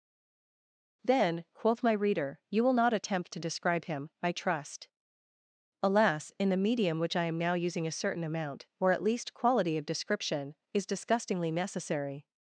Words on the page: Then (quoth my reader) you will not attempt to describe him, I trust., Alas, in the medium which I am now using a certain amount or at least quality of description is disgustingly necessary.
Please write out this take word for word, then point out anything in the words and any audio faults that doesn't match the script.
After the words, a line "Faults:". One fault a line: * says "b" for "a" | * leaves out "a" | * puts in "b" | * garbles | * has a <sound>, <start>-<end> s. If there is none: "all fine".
Then (quoth my reader) you will not attempt to describe him, I trust., Alas, in the medium which I am now using a certain amount or at least quality of description is disgustingly necessary.
Faults:
all fine